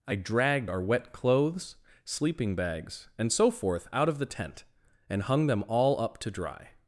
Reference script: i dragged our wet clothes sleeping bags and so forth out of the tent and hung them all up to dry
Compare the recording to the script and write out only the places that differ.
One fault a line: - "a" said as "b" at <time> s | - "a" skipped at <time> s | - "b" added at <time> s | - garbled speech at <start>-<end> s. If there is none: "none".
none